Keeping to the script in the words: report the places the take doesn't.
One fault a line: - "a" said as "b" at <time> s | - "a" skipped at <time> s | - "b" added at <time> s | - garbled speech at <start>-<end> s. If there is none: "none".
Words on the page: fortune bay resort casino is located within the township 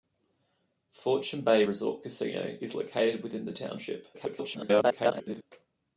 - garbled speech at 4.1-5.4 s